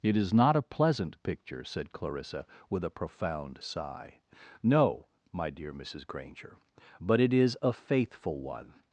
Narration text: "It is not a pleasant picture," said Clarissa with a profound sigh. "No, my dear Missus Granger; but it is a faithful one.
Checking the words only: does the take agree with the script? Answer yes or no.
yes